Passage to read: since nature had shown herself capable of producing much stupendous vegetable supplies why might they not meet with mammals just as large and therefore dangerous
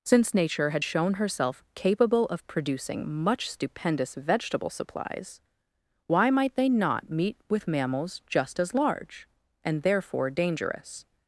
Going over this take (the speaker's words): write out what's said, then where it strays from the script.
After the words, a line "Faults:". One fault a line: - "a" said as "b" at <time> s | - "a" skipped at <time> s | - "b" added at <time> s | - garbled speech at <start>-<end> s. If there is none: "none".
since nature had shown herself capable of producing much stupendous vegetable supplies why might they not meet with mammals just as large and therefore dangerous
Faults:
none